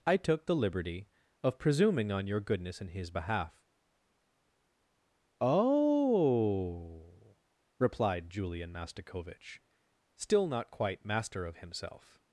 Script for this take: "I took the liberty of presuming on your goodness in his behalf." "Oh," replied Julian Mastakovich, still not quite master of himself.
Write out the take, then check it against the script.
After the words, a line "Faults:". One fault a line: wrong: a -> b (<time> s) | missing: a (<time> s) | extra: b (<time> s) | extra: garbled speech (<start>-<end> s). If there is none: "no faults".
"I took the liberty of presuming on your goodness in his behalf." "Oh," replied Julian Mastakovich, still not quite master of himself.
Faults:
no faults